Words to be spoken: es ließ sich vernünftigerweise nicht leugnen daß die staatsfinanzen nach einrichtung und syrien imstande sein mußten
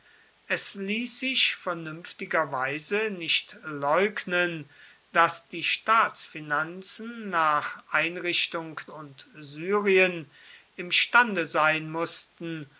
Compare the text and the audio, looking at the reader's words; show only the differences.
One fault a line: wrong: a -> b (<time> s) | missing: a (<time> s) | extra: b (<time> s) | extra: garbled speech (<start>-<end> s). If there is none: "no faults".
no faults